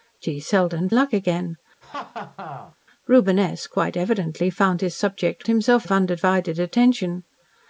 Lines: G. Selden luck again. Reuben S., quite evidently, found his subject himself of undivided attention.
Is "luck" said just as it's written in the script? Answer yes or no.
yes